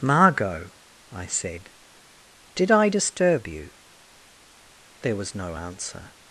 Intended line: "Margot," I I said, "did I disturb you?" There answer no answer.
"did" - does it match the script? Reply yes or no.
yes